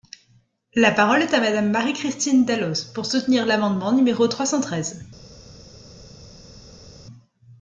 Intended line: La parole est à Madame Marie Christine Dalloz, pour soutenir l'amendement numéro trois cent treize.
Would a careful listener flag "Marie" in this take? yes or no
no